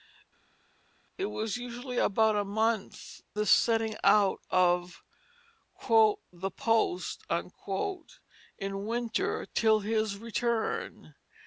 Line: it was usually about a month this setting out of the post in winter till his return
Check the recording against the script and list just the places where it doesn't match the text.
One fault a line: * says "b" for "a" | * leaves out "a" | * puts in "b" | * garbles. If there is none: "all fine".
all fine